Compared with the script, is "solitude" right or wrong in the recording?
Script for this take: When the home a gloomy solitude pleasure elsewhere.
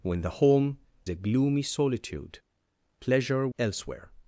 right